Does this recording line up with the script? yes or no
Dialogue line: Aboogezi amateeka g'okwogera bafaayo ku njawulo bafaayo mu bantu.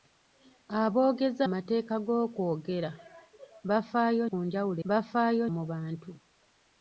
yes